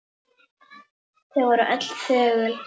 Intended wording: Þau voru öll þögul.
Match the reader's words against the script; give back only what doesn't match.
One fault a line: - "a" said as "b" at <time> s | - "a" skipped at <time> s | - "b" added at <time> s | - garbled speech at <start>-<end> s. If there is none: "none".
none